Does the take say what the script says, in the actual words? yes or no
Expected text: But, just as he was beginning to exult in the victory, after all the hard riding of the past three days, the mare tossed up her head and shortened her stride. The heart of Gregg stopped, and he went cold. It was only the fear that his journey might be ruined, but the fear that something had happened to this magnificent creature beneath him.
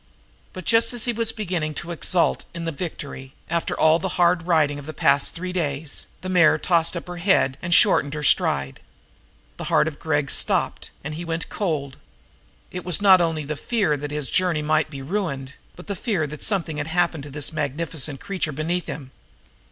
no